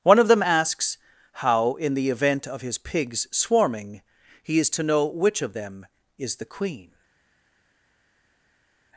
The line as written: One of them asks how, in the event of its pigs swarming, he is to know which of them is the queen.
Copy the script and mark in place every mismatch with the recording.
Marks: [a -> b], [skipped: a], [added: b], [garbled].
One of them asks how, in the event of [its -> his] pigs swarming, he is to know which of them is the queen.